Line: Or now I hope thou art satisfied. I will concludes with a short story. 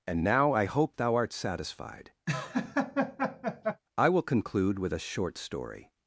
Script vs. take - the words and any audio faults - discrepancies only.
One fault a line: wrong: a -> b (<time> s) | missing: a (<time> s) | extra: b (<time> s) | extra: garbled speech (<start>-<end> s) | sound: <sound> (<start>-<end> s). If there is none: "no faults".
wrong: Or -> And (0.1 s)
sound: laugh (2.3-3.8 s)
wrong: concludes -> conclude (4.2 s)